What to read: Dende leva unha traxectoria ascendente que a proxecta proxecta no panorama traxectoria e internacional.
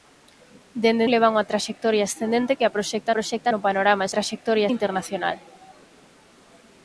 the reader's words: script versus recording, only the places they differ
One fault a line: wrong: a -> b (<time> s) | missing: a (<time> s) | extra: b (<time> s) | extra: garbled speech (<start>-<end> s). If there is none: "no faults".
no faults